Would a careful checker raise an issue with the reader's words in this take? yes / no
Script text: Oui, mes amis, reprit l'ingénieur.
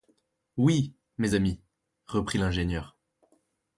no